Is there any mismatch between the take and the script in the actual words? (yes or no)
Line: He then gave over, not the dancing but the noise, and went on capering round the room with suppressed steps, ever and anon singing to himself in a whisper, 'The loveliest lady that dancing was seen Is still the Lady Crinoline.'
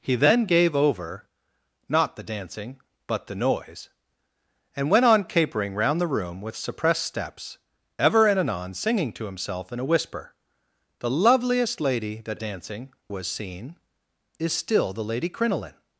no